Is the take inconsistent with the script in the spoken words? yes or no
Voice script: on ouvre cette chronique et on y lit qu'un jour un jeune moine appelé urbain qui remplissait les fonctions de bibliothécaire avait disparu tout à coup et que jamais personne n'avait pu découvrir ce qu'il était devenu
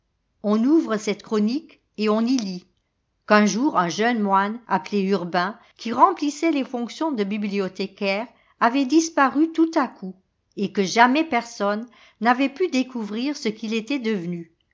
no